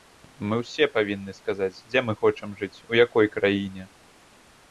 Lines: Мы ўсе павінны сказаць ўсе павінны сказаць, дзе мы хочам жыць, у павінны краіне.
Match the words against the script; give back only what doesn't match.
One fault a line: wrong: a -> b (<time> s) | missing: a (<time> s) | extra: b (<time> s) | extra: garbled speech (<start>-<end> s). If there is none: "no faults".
missing: ўсе павінны сказаць (1.8 s)
wrong: павінны -> якой (3.0 s)